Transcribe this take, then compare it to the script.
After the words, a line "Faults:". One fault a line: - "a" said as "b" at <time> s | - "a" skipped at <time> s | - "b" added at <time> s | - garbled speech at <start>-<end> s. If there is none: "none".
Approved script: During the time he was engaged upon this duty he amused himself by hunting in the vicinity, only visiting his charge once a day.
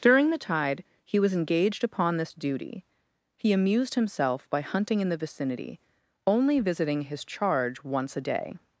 During the tide he was engaged upon this duty he amused himself by hunting in the vicinity, only visiting his charge once a day.
Faults:
- "time" said as "tide" at 0.4 s